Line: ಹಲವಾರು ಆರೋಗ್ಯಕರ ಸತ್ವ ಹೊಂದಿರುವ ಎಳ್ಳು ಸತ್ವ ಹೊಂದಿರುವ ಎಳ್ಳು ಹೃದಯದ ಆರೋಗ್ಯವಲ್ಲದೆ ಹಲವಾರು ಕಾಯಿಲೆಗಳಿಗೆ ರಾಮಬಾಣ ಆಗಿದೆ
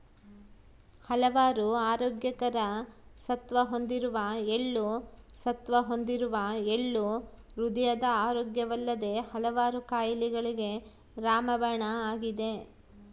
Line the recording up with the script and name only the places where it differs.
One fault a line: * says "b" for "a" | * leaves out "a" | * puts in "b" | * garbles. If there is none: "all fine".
all fine